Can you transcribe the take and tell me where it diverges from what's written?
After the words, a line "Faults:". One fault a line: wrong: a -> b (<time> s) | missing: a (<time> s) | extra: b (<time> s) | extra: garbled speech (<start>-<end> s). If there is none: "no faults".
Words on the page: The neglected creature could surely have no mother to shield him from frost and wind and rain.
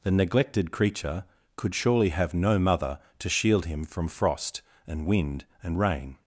The neglected creature could surely have no mother to shield him from frost and wind and rain.
Faults:
no faults